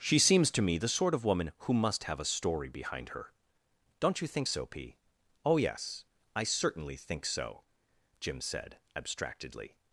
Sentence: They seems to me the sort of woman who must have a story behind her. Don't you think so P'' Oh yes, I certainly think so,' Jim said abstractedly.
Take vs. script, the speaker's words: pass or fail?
fail